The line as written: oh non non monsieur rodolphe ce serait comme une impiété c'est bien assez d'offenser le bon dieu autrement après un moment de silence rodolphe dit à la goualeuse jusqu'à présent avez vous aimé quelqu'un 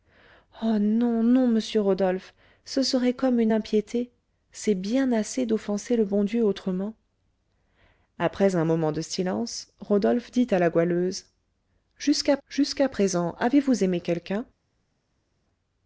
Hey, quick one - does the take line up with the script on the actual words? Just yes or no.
no